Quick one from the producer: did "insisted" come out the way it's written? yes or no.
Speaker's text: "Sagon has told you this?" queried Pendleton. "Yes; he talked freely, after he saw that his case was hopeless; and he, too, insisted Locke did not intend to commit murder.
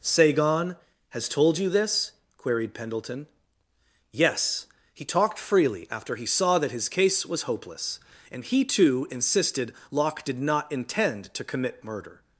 yes